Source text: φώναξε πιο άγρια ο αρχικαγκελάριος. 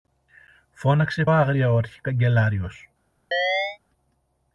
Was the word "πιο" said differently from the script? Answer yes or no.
yes